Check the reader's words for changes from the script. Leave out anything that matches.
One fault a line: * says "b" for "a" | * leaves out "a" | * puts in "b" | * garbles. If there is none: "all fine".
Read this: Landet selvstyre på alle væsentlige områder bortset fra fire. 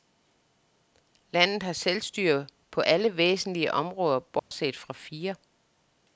* puts in "har"